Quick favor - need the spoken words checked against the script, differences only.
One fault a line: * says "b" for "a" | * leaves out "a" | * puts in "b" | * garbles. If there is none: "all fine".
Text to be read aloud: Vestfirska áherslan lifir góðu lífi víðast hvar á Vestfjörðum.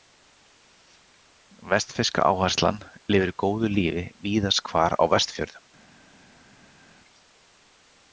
all fine